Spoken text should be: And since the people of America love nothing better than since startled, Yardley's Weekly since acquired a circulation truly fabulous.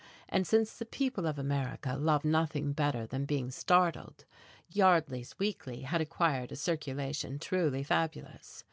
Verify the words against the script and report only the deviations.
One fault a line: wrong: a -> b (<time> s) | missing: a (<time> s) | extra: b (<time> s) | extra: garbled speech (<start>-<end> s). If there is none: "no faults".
wrong: since -> being (3.2 s)
wrong: since -> had (5.9 s)